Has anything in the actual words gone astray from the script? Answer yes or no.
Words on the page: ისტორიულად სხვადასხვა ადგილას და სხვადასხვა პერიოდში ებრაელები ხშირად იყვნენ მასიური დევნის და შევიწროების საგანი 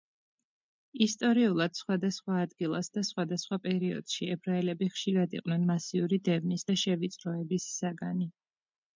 no